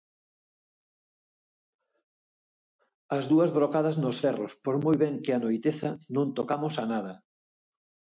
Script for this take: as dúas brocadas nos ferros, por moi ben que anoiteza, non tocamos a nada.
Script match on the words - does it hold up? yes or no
yes